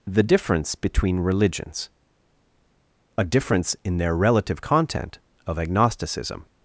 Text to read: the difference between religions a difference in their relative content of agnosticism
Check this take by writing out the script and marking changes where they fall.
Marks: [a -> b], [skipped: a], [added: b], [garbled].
the difference between religions a difference in their relative content of agnosticism